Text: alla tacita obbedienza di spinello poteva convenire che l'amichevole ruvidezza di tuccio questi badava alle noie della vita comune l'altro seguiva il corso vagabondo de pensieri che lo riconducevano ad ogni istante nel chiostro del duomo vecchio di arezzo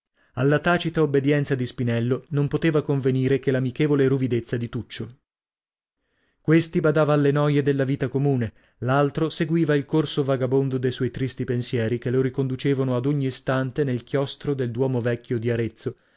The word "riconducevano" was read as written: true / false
true